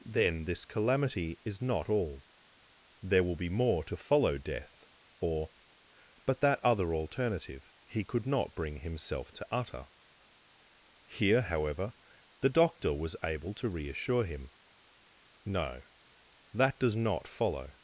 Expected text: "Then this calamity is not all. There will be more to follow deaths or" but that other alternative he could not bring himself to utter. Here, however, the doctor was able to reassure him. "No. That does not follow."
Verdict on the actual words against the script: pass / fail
fail